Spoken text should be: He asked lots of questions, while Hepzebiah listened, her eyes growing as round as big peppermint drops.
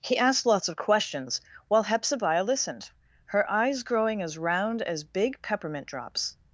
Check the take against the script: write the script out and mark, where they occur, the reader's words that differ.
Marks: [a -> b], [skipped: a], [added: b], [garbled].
He asked lots of questions, while Hepzebiah listened, her eyes growing as round as big peppermint drops.